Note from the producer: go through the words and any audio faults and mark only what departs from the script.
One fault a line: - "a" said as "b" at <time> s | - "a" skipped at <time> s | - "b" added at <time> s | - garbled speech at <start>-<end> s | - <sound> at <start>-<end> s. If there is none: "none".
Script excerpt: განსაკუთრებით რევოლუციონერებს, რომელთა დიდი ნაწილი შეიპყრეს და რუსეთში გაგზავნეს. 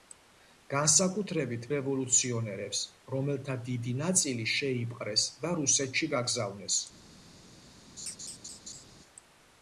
- laugh at 8.0-8.8 s